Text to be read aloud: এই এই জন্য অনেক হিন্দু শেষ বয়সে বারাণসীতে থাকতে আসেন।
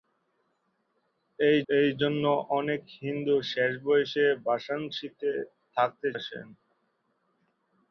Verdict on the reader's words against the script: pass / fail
pass